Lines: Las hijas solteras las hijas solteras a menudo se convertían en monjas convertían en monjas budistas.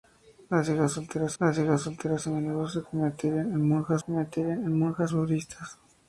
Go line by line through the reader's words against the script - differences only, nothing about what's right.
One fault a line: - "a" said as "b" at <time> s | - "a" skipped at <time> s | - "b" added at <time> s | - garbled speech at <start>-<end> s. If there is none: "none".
none